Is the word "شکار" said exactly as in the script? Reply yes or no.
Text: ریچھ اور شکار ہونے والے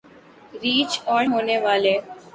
no